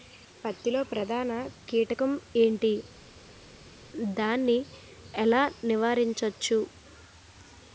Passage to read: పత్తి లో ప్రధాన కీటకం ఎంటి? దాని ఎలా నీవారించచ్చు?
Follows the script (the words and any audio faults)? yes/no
yes